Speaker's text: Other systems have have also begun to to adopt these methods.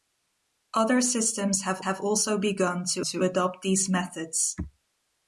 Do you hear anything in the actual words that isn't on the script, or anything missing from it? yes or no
no